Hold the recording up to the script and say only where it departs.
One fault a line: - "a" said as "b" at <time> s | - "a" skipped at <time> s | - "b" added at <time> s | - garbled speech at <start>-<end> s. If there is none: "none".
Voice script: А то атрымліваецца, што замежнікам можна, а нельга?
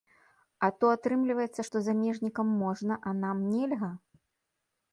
- "нам" added at 3.2 s